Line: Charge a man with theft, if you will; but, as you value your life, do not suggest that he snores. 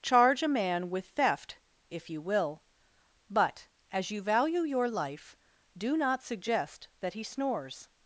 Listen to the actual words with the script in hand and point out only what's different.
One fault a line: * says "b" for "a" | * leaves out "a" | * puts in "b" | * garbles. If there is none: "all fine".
all fine